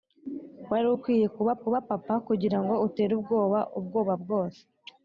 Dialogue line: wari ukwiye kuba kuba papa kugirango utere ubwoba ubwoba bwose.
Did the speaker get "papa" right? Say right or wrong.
right